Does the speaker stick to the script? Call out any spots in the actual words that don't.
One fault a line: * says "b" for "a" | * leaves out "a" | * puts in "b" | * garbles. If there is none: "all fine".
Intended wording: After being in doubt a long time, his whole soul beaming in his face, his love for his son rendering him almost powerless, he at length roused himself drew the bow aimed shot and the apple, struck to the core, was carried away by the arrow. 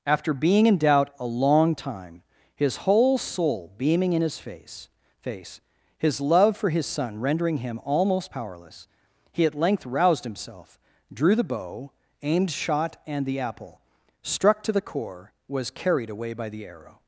* puts in "face"